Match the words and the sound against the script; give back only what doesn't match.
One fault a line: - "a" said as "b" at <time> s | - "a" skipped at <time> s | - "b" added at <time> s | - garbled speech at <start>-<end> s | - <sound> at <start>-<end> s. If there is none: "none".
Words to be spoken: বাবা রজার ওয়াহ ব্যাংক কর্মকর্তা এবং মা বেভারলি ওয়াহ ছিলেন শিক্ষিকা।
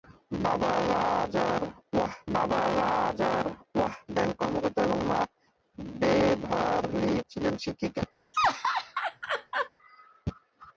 - "বাবা রজার ওয়াহ" added at 2.3 s
- "ওয়াহ" skipped at 7.2 s
- laugh at 8.3-9.7 s